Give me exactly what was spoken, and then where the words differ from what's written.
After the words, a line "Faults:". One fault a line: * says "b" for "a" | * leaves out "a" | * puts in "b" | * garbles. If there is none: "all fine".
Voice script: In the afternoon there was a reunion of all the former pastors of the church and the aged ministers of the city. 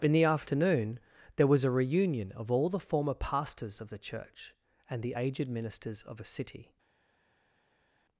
In the afternoon there was a reunion of all the former pastors of the church and the aged ministers of a city.
Faults:
* says "a" for "the"